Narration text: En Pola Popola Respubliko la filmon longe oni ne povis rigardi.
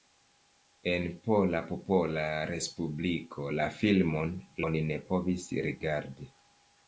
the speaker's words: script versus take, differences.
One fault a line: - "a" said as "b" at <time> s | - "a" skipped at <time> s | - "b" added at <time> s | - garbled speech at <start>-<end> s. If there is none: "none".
- "longe" skipped at 4.3 s